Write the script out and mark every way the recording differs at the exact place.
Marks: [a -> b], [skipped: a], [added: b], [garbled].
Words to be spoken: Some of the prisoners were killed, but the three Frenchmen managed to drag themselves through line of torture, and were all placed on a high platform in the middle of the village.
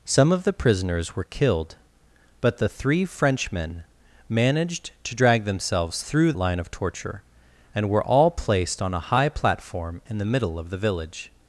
Some of the prisoners were killed, but the three Frenchmen managed to drag themselves through line of torture, and were all placed on a high platform in the middle of the village.